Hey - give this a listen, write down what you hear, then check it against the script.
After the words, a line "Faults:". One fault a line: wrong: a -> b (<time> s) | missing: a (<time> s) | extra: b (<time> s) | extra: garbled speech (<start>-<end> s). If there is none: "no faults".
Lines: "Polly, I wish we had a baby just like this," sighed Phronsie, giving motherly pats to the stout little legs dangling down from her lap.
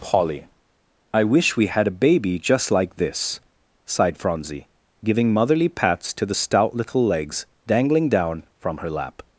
"Polly, I wish we had a baby just like this," sighed Phronsie, giving motherly pats to the stout little legs dangling down from her lap.
Faults:
no faults